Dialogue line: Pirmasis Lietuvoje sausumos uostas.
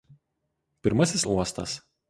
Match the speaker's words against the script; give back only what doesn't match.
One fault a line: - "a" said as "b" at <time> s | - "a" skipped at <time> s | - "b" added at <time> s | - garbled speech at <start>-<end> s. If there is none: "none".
- "Lietuvoje sausumos" skipped at 1.3 s